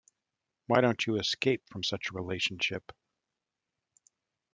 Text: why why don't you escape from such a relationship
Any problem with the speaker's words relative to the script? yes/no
yes